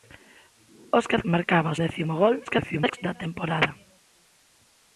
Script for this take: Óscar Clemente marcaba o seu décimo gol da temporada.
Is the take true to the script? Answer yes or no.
no